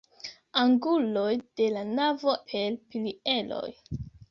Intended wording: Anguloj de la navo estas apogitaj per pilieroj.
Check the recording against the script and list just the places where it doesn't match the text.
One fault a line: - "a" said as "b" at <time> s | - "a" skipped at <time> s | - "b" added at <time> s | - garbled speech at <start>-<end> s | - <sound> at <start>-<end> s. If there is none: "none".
- "estas apogitaj" skipped at 2.3 s